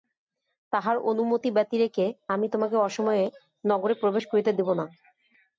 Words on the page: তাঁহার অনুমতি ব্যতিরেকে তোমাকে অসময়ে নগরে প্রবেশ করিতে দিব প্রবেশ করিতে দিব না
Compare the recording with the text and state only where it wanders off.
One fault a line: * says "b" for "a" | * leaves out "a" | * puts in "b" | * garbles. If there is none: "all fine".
* puts in "আমি"
* leaves out "প্রবেশ করিতে দিব"